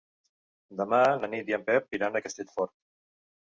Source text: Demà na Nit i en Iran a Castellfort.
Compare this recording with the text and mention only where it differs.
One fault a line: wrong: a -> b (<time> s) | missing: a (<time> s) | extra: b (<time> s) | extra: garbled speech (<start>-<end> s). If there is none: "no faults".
extra: Pep (1.7 s)